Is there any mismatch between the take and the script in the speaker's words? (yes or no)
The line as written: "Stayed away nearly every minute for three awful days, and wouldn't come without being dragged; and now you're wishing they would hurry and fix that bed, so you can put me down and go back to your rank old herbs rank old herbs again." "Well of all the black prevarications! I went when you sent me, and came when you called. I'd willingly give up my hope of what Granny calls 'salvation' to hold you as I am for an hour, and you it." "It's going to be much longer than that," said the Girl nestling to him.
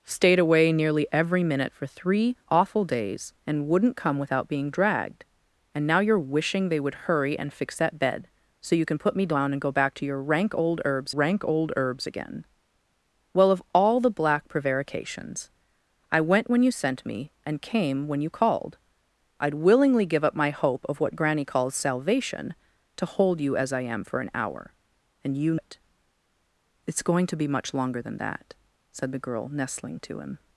no